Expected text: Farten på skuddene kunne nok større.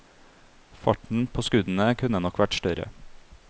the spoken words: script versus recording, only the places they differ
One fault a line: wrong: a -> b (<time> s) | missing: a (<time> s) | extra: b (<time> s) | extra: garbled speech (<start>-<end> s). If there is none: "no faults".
extra: vært (2.4 s)